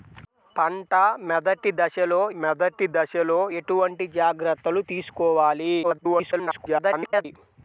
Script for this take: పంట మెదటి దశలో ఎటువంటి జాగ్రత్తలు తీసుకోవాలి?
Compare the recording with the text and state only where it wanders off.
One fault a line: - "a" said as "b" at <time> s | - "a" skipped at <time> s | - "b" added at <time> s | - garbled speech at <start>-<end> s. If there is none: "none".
- "మెదటి దశలో" added at 2.3 s
- garbled speech at 5.8-7.3 s